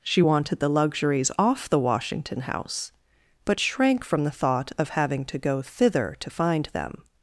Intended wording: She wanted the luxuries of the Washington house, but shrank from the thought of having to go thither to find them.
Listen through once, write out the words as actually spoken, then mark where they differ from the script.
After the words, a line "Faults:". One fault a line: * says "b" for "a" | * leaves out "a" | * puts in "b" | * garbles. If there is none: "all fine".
She wanted the luxuries off the Washington house, but shrank from the thought of having to go thither to find them.
Faults:
* says "off" for "of"